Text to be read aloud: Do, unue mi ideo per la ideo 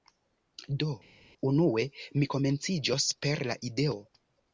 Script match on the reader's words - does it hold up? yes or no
no